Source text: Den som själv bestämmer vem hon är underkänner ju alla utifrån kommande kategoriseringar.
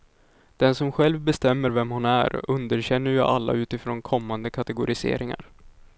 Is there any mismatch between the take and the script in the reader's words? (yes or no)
no